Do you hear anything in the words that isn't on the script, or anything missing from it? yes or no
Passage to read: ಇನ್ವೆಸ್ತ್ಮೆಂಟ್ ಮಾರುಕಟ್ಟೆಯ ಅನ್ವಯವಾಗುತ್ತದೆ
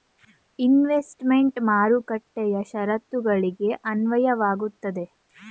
yes